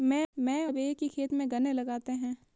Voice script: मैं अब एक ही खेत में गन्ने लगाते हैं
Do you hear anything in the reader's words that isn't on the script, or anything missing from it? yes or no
no